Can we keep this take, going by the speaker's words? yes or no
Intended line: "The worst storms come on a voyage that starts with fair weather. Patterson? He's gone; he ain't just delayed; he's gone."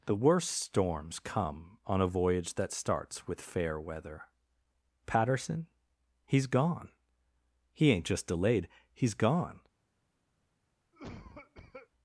yes